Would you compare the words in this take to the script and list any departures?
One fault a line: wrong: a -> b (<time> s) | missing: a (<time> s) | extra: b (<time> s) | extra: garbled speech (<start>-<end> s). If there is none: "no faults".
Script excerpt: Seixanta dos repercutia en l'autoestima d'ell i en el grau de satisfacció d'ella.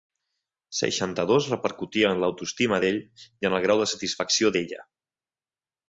no faults